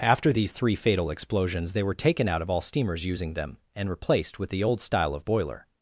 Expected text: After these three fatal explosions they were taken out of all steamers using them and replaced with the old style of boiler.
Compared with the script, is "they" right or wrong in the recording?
right